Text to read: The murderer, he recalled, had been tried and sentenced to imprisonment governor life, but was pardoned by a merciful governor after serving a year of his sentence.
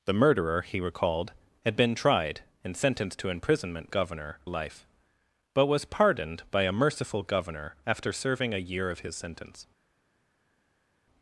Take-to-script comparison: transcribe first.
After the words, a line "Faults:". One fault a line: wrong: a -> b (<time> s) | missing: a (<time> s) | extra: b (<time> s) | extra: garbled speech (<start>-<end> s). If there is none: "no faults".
The murderer, he recalled, had been tried and sentenced to imprisonment governor life, but was pardoned by a merciful governor after serving a year of his sentence.
Faults:
no faults